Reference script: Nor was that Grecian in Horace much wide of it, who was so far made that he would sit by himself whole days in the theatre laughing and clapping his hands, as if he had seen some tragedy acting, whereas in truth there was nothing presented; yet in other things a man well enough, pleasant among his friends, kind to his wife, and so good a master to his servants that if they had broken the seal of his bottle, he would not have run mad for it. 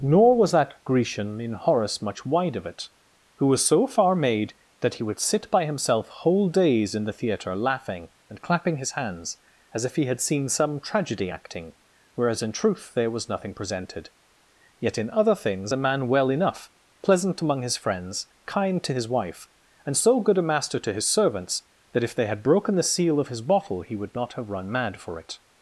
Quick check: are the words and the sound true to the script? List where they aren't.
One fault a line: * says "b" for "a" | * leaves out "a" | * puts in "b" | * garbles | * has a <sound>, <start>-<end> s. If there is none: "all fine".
all fine